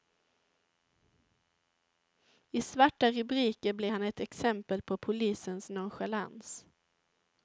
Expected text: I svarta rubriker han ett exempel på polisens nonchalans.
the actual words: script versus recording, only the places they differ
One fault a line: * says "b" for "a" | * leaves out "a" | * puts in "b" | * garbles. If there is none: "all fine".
* puts in "blir"